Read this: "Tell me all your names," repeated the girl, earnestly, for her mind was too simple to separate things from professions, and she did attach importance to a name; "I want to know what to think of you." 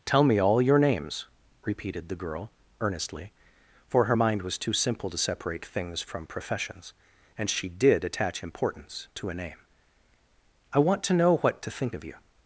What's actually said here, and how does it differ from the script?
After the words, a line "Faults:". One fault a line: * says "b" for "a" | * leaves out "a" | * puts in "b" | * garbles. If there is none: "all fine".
"Tell me all your names," repeated the girl, earnestly, for her mind was too simple to separate things from professions, and she did attach importance to a name; "I want to know what to think of you."
Faults:
all fine